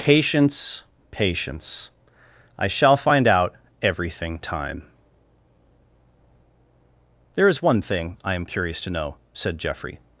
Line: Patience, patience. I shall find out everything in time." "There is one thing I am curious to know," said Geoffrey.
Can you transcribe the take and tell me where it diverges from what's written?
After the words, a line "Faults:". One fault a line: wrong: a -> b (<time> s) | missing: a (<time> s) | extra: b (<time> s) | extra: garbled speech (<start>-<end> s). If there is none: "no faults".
Patience, patience. I shall find out everything time." "There is one thing I am curious to know," said Geoffrey.
Faults:
missing: in (4.4 s)